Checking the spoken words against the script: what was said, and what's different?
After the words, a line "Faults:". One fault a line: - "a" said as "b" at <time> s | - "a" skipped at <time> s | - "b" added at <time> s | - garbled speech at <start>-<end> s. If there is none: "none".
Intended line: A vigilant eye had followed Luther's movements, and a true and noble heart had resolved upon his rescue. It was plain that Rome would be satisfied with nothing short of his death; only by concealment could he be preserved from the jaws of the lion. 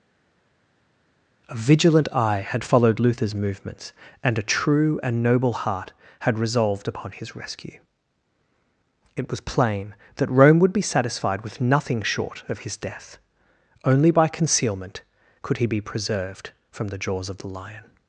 A vigilant eye had followed Luther's movements, and a true and noble heart had resolved upon his rescue. It was plain that Rome would be satisfied with nothing short of his death; only by concealment could he be preserved from the jaws of the lion.
Faults:
none